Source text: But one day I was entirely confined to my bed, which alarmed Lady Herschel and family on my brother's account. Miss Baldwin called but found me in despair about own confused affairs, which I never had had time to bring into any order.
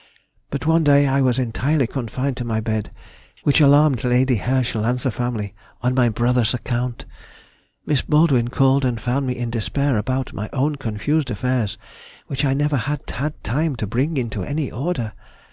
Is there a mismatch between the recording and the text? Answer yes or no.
yes